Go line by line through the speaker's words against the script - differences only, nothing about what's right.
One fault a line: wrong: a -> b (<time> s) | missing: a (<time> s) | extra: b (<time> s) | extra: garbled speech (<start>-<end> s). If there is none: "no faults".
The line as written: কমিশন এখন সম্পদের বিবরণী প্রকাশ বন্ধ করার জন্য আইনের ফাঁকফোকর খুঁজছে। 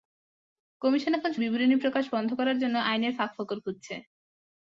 missing: সম্পদের (1.3 s)